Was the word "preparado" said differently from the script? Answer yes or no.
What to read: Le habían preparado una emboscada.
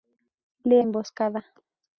yes